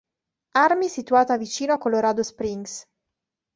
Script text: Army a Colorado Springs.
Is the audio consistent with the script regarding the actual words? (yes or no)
no